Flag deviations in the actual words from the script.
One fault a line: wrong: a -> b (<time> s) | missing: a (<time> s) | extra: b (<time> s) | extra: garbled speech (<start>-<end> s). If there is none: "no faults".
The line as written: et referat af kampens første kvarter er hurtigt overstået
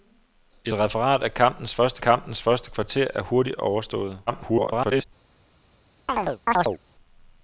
extra: kampens første (2.0 s)
extra: garbled speech (4.3-5.0 s)